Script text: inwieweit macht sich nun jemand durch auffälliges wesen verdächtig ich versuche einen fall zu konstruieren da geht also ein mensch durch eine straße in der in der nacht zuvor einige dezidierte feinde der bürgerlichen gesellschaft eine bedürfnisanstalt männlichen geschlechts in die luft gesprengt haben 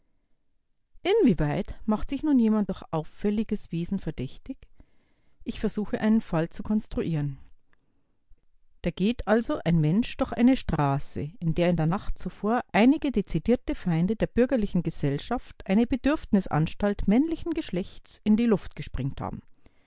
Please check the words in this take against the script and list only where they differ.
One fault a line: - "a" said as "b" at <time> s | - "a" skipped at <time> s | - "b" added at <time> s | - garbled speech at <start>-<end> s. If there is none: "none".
none